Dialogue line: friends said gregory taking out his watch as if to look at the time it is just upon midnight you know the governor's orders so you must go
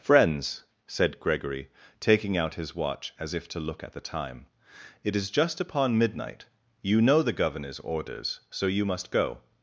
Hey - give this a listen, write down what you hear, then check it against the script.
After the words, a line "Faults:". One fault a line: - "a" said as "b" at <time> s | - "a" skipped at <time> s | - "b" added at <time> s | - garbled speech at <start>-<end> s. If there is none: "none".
friends said gregory taking out his watch as if to look at the time it is just upon midnight you know the governor's orders so you must go
Faults:
none